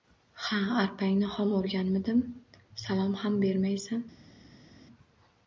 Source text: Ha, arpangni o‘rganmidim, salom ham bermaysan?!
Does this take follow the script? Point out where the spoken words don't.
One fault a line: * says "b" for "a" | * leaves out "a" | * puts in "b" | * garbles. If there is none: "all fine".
* puts in "xom"